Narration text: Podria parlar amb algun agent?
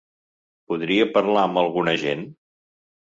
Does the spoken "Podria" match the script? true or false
true